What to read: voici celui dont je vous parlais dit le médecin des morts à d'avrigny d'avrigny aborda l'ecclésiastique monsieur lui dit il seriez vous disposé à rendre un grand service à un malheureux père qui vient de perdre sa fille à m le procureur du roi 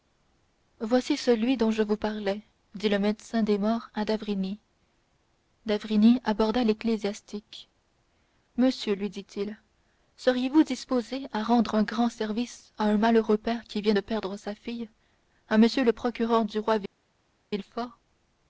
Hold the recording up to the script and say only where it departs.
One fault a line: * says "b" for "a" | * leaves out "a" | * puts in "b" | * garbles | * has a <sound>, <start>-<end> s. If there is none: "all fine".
all fine